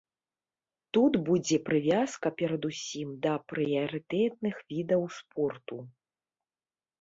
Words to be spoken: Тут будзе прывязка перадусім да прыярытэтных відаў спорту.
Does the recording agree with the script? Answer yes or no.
yes